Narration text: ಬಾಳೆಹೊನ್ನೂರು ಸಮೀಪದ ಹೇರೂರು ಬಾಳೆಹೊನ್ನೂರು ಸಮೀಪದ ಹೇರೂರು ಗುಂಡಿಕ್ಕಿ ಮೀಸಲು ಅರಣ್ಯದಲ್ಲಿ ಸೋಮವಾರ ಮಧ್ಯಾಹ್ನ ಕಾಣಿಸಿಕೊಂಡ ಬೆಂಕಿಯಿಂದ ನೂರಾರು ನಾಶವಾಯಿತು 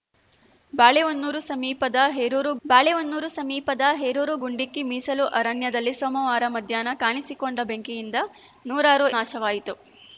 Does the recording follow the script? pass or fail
pass